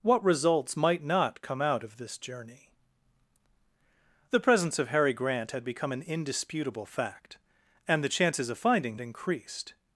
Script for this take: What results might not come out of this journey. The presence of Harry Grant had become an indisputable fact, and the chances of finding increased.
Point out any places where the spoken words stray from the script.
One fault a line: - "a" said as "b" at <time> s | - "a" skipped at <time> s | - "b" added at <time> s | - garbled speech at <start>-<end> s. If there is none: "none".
none